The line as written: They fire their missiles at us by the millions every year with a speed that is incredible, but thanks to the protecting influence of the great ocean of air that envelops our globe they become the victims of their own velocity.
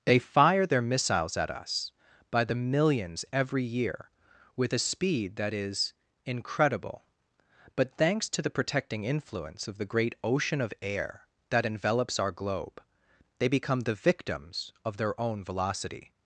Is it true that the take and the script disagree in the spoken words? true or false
false